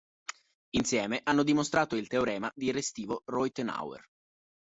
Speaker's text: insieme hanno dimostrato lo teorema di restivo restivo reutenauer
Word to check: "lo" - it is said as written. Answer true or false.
false